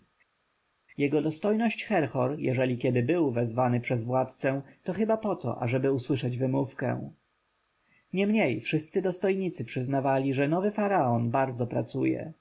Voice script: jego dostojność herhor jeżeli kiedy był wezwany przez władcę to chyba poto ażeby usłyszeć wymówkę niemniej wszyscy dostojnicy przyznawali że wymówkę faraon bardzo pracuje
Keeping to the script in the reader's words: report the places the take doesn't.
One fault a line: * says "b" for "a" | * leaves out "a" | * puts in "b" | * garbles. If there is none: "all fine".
* says "nowy" for "wymówkę"